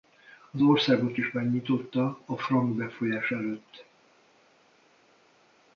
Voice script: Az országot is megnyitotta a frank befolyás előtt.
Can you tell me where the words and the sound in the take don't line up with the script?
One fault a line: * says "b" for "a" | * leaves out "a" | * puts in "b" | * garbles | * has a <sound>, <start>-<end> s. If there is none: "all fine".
all fine